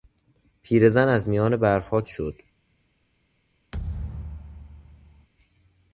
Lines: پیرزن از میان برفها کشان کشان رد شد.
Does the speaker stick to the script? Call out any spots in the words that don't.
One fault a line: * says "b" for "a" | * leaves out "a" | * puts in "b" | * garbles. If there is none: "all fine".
* leaves out "کشان کشان رد"